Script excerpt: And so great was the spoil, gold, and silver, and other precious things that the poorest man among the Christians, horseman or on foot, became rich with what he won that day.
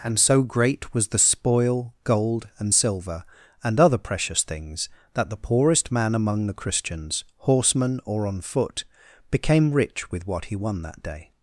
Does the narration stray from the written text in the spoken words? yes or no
no